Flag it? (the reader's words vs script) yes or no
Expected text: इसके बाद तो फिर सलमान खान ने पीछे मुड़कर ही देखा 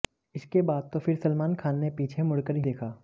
no